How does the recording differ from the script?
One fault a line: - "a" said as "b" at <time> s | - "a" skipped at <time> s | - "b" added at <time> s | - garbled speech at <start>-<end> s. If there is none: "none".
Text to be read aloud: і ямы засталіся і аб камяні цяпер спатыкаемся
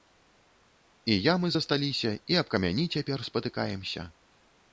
none